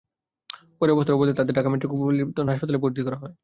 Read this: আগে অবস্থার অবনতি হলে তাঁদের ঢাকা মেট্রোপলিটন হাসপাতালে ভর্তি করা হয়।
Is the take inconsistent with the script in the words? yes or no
yes